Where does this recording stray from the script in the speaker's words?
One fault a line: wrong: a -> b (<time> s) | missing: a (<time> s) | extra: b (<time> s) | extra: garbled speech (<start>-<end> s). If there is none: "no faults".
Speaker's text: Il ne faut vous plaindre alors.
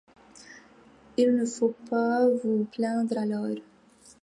extra: pas (1.9 s)